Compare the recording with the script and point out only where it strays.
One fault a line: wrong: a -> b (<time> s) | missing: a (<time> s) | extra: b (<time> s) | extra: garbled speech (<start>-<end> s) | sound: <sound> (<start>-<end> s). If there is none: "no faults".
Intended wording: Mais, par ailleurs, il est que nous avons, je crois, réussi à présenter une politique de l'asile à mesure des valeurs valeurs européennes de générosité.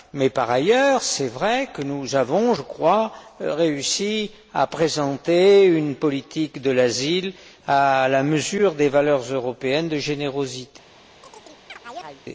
extra: vrai (1.3 s)
extra: la (8.1 s)
missing: valeurs (9.2 s)
sound: chirp (11.2-12.2 s)